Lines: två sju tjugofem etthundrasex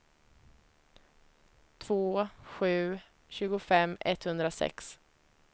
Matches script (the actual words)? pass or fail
pass